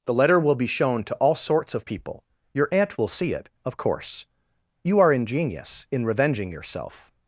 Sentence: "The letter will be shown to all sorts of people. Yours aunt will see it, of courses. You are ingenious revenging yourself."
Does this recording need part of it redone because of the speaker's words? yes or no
yes